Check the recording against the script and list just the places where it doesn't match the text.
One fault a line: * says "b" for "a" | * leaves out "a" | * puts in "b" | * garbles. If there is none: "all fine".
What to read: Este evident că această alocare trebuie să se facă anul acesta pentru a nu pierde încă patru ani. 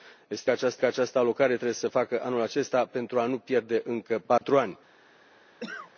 * says "această" for "evident"